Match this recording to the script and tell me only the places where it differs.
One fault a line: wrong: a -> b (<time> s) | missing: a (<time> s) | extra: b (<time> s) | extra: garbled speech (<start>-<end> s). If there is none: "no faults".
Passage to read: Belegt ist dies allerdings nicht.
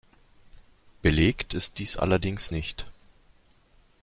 no faults